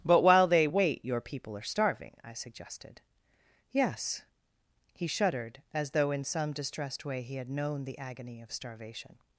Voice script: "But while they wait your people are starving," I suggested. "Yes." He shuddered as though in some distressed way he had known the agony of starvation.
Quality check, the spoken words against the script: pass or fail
pass